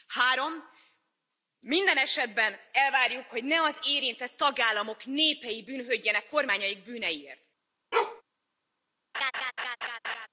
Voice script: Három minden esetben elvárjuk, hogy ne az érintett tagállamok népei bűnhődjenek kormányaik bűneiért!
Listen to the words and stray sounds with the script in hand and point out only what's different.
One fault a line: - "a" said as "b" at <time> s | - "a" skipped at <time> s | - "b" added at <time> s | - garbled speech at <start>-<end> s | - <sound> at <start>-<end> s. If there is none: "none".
- bark at 7.9-8.2 s
- laugh at 9.1-10.3 s